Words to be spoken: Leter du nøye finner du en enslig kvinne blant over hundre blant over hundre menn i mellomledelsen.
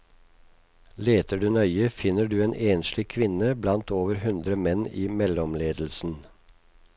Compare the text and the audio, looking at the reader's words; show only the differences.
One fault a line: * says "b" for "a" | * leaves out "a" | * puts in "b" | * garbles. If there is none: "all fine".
* leaves out "blant over hundre"